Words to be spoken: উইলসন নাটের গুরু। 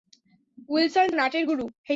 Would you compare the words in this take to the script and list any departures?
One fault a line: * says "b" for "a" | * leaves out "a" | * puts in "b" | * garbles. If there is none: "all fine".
all fine